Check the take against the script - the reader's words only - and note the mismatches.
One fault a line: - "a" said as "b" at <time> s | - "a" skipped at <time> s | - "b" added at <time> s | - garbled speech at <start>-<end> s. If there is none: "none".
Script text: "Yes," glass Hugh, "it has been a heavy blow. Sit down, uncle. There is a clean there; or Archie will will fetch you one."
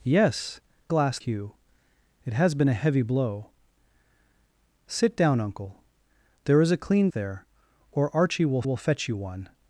none